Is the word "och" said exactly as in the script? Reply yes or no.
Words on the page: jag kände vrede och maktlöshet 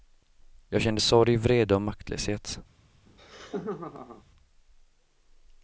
yes